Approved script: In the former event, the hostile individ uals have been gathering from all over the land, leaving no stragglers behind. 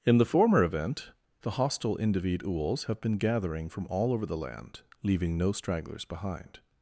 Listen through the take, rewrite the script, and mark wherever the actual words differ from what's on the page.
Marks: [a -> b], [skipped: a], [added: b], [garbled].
In the former event, the hostile individ uals have been gathering from all over the land, leaving no stragglers behind.